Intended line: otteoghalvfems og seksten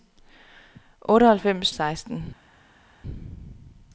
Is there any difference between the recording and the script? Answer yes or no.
no